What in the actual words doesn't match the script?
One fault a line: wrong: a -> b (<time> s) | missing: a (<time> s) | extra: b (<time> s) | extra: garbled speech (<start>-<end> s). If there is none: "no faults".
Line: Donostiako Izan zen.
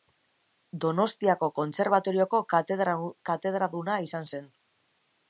extra: Kontserbatorioko katedraduna (1.6 s)